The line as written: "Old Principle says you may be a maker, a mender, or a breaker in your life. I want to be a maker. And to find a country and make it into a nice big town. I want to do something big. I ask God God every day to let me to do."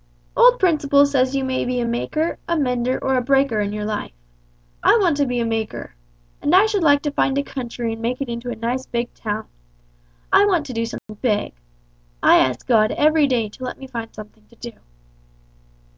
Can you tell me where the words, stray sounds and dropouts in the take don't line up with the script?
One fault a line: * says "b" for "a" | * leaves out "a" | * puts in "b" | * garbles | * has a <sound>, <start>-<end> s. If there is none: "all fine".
* puts in "I should like"
* has a dropout, 11.0-11.1 s
* leaves out "God"
* puts in "find something"